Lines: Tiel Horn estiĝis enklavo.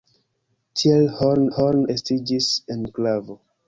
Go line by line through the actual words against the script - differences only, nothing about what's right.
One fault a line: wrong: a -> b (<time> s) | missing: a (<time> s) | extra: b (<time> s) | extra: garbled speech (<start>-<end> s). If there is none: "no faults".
extra: Horn (1.6 s)